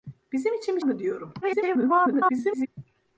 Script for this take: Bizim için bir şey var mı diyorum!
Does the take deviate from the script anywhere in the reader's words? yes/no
yes